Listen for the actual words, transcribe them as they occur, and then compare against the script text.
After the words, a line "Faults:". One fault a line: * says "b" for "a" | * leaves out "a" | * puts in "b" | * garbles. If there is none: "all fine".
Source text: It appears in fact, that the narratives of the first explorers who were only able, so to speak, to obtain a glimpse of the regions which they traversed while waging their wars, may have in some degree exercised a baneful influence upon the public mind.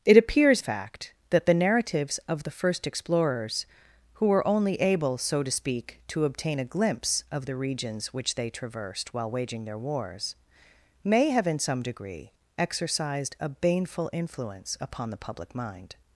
It appears fact, that the narratives of the first explorers who were only able, so to speak, to obtain a glimpse of the regions which they traversed while waging their wars, may have in some degree exercised a baneful influence upon the public mind.
Faults:
* leaves out "in"